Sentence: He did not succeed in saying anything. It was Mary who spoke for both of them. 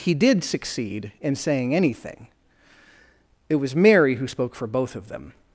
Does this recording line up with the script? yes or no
no